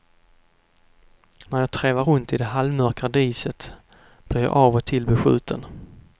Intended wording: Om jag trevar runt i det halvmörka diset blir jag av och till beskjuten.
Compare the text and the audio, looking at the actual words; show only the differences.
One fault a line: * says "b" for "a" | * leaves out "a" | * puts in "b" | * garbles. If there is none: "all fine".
* says "När" for "Om"